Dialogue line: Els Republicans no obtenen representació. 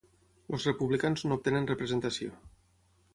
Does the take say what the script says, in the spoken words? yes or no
yes